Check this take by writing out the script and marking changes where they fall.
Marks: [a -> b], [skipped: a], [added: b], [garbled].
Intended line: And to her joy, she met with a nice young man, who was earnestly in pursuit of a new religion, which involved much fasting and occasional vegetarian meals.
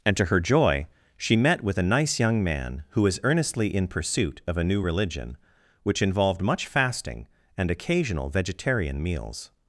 And to her joy, she met with a nice young man, who was earnestly in pursuit of a new religion, which involved much fasting and occasional vegetarian meals.